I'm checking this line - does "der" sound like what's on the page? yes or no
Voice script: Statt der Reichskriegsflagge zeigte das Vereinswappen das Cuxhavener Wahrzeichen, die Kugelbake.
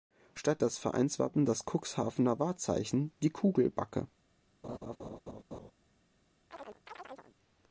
no